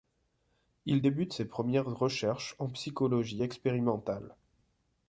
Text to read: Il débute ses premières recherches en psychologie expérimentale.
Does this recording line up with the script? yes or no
yes